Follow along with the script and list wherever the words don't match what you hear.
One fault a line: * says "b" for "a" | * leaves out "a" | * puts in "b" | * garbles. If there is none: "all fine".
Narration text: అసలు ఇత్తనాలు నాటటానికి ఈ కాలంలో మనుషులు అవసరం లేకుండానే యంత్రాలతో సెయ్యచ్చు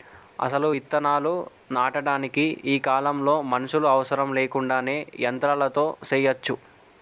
all fine